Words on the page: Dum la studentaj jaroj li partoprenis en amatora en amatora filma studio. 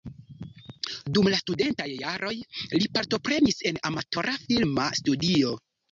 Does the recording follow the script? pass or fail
fail